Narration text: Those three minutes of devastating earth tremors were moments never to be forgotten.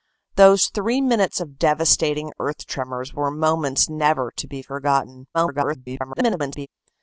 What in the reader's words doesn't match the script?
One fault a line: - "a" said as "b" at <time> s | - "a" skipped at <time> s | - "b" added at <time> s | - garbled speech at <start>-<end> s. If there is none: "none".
- garbled speech at 5.3-6.7 s